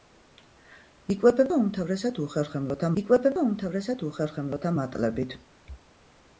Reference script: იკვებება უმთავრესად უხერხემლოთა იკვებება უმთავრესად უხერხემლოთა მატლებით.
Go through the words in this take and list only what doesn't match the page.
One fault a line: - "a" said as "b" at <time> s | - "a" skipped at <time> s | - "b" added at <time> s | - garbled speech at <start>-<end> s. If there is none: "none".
none